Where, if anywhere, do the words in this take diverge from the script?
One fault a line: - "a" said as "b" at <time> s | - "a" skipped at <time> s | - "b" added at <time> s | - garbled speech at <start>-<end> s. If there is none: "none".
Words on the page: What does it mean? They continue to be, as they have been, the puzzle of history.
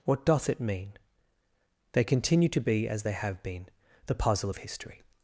- "does" said as "doth" at 0.2 s